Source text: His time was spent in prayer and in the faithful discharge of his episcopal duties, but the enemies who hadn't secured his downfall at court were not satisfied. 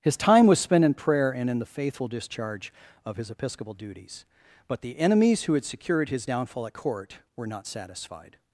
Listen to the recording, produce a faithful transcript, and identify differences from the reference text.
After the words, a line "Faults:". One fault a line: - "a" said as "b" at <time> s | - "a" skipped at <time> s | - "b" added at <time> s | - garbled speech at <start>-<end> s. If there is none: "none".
His time was spent in prayer and in the faithful discharge of his episcopal duties, but the enemies who had secured his downfall at court were not satisfied.
Faults:
- "hadn't" said as "had" at 5.5 s